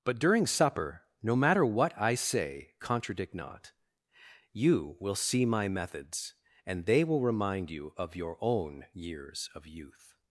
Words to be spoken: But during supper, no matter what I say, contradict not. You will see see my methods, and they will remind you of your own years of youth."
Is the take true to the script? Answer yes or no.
no